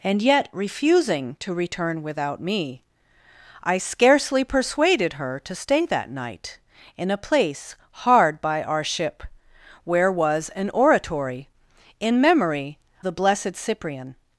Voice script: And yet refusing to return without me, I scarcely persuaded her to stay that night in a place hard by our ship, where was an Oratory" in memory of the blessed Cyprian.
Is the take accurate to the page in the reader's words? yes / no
no